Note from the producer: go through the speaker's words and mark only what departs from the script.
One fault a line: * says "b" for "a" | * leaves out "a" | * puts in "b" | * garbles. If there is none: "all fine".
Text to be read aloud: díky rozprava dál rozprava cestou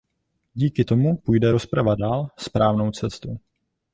* puts in "tomu půjde"
* says "správnou" for "rozprava"